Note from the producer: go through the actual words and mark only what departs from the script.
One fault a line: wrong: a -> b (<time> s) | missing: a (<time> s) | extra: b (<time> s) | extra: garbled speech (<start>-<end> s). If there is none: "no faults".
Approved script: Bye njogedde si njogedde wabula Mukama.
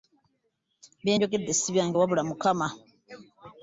wrong: njogedde -> byange (1.7 s)